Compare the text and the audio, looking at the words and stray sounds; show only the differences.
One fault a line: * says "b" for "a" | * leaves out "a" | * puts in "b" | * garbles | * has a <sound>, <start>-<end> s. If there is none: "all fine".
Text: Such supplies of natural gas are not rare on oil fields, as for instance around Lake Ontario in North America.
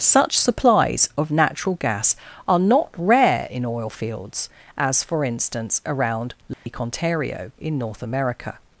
* says "in" for "on"
* has a dropout, 6.5-6.7 s